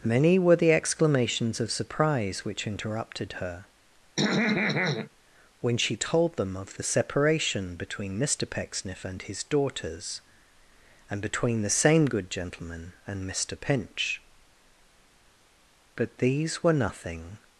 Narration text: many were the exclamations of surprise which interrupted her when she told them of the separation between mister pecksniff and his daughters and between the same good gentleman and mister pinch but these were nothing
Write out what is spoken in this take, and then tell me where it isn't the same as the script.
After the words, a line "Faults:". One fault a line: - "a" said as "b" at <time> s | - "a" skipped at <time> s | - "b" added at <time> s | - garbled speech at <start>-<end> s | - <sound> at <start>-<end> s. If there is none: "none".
many were the exclamations of surprise which interrupted her when she told them of the separation between mister pecksniff and his daughters and between the same good gentleman and mister pinch but these were nothing
Faults:
- throat clearing at 4.2-5.1 s